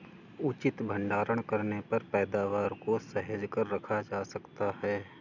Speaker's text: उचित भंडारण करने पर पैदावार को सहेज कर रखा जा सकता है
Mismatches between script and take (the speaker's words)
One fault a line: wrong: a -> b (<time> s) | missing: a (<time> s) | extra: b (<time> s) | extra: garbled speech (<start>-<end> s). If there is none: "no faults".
no faults